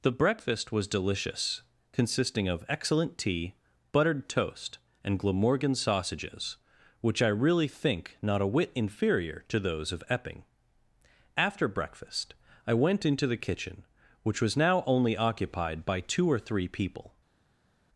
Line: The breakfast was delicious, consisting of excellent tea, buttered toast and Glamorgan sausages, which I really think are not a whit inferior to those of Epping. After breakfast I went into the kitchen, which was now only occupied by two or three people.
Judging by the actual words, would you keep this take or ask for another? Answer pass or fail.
fail